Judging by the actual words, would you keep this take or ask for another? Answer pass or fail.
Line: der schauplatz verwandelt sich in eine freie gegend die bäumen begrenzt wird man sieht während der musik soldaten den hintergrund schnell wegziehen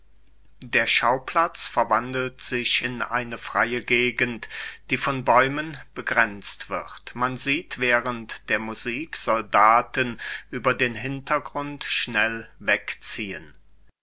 fail